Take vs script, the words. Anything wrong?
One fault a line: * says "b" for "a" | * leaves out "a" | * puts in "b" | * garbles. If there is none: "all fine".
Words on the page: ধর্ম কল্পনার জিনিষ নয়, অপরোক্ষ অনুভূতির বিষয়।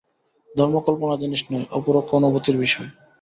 all fine